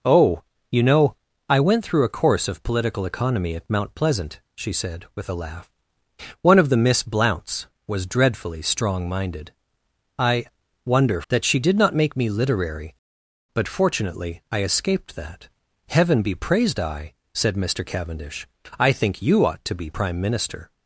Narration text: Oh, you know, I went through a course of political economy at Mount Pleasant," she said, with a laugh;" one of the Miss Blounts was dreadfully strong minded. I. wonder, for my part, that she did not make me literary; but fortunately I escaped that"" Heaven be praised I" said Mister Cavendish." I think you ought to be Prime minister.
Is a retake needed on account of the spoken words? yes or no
yes